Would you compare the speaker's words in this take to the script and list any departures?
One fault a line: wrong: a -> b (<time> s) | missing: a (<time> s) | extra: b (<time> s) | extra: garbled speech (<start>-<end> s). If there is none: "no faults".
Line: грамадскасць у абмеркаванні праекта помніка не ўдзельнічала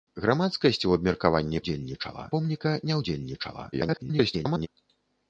wrong: праекта -> ўдзельнічала (1.6 s)
extra: garbled speech (3.7-4.7 s)